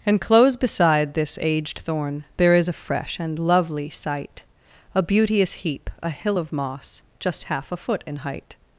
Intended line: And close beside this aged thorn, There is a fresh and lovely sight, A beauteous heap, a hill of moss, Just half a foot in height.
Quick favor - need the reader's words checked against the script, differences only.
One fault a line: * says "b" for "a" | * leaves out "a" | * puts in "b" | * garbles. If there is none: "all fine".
all fine